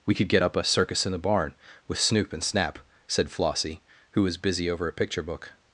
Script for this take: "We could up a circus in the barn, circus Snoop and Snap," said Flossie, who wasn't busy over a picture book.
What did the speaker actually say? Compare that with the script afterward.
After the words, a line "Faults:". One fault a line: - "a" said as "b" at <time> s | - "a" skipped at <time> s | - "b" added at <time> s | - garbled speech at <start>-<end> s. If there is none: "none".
"We could get up a circus in the barn, with Snoop and Snap," said Flossie, who was busy over a picture book.
Faults:
- "get" added at 0.3 s
- "circus" said as "with" at 1.9 s
- "wasn't" said as "was" at 4.2 s